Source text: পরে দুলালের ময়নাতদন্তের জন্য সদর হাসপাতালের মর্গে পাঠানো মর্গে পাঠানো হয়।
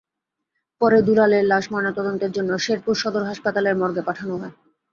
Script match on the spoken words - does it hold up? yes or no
no